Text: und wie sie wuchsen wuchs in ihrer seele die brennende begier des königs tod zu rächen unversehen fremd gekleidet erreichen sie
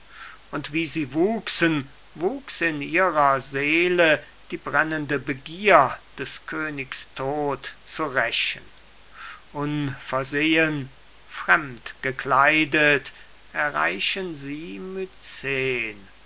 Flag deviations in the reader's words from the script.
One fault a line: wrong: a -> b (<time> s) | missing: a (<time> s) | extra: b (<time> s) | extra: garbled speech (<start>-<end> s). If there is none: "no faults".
no faults